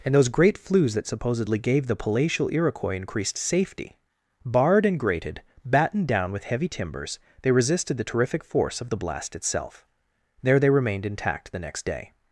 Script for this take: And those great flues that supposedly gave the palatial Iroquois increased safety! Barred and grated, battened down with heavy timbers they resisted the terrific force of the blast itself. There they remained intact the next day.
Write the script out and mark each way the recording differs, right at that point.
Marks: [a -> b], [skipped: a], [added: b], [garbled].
And those great flues that supposedly gave the palatial Iroquois increased safety! Barred and grated, battened down with heavy timbers they resisted the terrific force of the blast itself. There they remained intact the next day.